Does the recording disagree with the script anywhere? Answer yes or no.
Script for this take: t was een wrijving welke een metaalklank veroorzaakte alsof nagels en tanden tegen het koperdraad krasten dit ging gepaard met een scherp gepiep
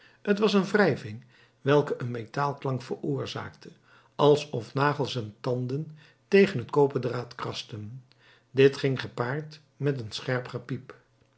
no